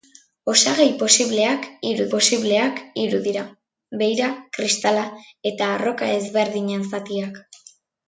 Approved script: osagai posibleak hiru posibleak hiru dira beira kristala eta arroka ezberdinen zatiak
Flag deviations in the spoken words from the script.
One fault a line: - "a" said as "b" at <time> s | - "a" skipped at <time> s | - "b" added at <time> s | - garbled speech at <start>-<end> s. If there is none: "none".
none